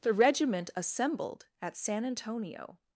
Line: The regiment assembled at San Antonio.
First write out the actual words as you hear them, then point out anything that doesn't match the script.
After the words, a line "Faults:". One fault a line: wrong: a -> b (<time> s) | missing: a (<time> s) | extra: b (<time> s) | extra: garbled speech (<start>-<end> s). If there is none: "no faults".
The regiment assembled at San Antonio.
Faults:
no faults